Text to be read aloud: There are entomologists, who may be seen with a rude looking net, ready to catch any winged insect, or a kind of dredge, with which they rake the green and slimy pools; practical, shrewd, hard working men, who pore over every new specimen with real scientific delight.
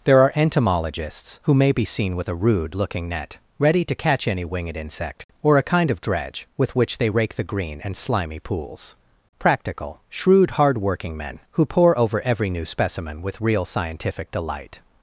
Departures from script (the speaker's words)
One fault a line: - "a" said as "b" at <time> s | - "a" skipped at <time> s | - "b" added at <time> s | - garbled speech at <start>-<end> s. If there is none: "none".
none